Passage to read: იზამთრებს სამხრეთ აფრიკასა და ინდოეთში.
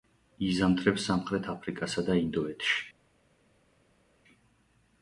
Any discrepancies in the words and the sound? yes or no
no